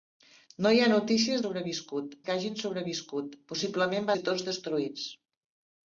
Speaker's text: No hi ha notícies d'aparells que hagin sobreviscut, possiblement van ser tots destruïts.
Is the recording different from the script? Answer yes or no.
yes